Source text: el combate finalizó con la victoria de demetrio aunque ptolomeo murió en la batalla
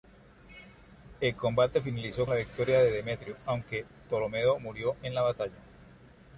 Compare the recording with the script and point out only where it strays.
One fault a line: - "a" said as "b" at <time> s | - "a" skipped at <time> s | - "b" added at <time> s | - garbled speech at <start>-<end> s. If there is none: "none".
- "con" skipped at 2.2 s